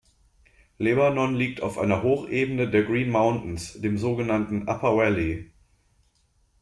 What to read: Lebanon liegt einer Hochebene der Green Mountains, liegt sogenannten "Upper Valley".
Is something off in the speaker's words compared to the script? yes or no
yes